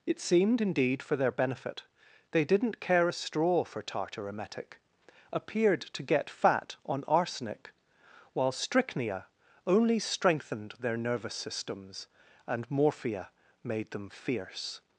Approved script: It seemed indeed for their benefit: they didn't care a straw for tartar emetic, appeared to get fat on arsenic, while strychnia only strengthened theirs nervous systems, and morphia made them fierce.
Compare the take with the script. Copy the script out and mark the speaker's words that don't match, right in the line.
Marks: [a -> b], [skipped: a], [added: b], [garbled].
It seemed indeed for their benefit: they didn't care a straw for tartar emetic, appeared to get fat on arsenic, while strychnia only strengthened [theirs -> their] nervous systems, and morphia made them fierce.